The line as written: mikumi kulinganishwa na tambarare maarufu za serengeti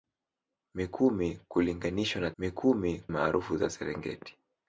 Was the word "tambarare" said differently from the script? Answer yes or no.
yes